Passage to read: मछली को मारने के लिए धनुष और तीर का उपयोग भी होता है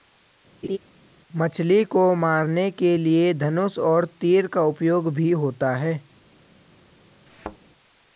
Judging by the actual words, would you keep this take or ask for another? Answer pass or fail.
pass